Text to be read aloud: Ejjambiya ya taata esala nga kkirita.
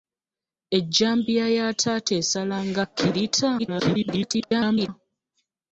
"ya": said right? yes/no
yes